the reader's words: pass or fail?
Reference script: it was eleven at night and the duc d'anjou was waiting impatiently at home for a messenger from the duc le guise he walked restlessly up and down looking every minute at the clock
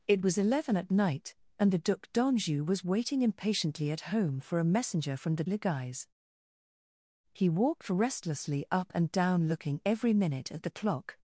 fail